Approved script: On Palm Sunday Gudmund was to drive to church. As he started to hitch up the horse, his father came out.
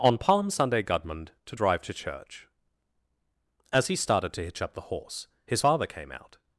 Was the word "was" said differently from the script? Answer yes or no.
yes